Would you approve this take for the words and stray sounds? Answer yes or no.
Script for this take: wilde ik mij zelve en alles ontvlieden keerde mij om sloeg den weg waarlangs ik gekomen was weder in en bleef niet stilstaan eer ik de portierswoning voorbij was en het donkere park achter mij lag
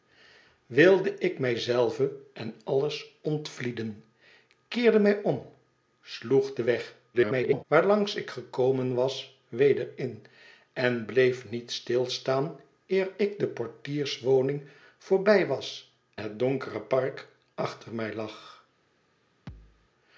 no